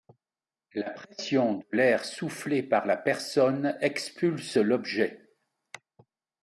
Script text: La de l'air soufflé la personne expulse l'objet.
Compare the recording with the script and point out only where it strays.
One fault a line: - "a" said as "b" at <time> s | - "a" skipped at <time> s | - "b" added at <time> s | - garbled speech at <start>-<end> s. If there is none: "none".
- "pression" added at 0.9 s
- "par" added at 2.6 s